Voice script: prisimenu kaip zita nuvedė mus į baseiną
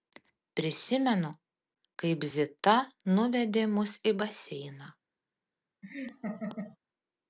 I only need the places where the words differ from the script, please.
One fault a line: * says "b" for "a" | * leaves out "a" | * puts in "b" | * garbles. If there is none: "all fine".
all fine